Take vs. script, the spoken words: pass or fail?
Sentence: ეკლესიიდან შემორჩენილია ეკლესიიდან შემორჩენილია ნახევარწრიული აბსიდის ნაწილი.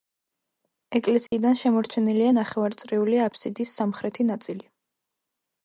fail